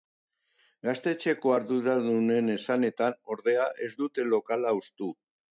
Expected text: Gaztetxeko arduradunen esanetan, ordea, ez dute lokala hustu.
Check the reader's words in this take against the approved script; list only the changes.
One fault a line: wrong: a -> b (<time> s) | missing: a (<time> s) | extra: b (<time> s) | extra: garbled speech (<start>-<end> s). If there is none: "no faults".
no faults